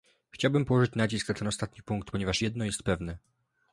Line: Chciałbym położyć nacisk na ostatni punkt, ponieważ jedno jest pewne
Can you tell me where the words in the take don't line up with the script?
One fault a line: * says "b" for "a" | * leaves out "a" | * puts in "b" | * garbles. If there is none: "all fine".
* puts in "ten"